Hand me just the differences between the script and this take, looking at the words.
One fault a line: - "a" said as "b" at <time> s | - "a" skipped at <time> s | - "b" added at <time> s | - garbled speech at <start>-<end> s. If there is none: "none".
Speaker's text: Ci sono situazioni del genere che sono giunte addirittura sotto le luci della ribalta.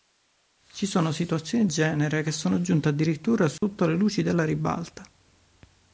- "del" skipped at 1.7 s